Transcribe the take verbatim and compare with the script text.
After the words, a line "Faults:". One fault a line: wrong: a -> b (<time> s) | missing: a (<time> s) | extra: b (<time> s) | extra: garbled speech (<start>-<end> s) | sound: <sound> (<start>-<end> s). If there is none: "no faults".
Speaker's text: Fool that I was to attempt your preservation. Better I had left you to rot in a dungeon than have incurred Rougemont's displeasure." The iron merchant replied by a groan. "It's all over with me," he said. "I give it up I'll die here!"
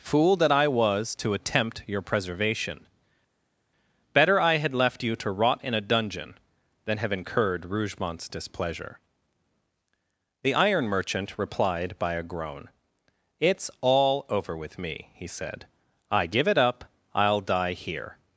Fool that I was to attempt your preservation. Better I had left you to rot in a dungeon than have incurred Rougemont's displeasure." The iron merchant replied by a groan. "It's all over with me," he said. "I give it up I'll die here!"
Faults:
no faults